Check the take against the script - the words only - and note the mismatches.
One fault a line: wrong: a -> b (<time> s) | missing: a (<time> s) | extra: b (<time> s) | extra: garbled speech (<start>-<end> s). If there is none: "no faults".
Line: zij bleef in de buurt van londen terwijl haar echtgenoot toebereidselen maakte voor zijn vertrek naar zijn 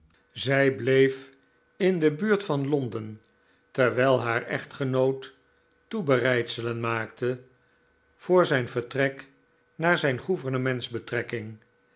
no faults